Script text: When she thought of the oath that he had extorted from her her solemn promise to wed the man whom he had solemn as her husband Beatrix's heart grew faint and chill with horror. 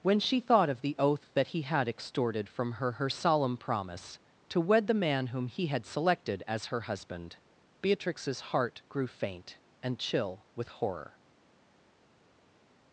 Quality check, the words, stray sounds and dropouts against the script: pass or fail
fail